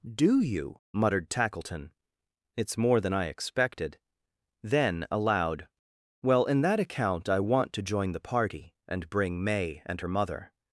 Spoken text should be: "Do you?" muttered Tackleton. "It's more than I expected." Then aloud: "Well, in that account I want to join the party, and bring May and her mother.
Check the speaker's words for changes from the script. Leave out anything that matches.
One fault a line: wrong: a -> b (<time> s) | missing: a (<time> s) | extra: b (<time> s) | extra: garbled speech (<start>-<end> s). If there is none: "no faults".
no faults